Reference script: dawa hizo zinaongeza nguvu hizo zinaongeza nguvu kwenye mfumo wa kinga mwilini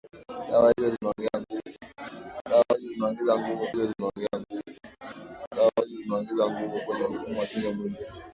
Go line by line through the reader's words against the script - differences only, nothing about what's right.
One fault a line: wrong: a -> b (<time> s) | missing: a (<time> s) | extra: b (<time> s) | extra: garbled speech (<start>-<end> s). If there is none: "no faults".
no faults